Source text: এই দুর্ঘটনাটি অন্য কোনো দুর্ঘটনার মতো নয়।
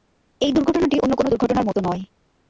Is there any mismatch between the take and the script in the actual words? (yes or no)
no